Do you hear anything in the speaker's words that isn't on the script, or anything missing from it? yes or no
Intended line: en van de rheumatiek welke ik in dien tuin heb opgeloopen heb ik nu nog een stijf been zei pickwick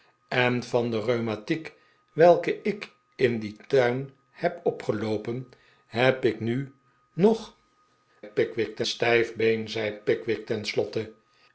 yes